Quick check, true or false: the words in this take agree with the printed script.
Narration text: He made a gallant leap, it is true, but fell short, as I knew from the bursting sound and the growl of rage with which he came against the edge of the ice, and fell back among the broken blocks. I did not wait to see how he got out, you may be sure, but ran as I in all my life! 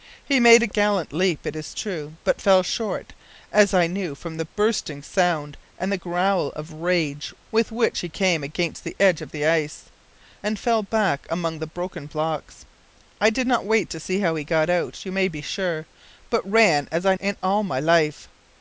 true